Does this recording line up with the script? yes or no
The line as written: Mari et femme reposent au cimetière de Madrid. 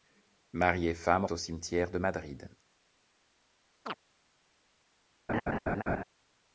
no